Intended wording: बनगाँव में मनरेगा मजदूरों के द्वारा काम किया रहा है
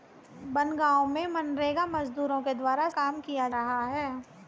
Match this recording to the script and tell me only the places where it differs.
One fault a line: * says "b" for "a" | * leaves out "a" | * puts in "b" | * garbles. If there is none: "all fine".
all fine